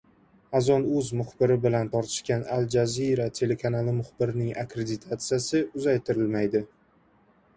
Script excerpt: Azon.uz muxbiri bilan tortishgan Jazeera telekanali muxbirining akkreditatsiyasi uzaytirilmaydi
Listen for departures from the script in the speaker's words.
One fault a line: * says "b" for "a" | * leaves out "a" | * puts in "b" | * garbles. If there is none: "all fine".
* puts in "Al"